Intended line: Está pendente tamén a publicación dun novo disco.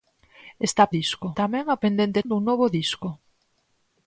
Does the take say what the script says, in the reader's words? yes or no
no